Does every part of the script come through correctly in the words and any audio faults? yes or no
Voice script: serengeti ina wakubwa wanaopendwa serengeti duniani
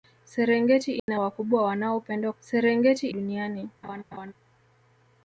no